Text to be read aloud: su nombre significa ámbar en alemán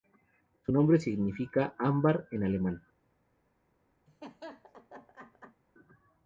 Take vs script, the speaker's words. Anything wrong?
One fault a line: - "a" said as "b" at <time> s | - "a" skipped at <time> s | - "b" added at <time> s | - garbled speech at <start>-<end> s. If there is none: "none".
none